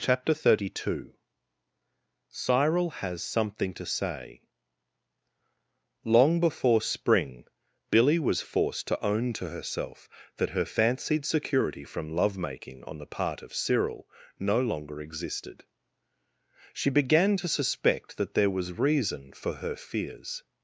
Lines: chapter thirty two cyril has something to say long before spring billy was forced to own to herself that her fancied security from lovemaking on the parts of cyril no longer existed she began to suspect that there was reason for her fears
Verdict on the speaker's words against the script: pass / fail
fail